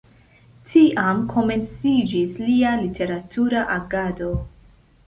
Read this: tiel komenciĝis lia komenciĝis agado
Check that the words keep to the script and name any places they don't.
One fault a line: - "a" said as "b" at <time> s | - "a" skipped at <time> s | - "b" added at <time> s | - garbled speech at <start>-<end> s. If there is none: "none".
- "tiel" said as "tiam" at 0.7 s
- "komenciĝis" said as "literatura" at 2.8 s